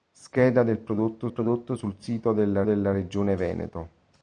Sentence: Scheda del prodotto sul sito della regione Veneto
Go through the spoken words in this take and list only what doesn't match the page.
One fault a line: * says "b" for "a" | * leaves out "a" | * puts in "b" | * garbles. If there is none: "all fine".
* puts in "prodotto"
* puts in "della"